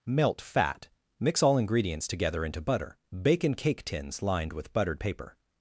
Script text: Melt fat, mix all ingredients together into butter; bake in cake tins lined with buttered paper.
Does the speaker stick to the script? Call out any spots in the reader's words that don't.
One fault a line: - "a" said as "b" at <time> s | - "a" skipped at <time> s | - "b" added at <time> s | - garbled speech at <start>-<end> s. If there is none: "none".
none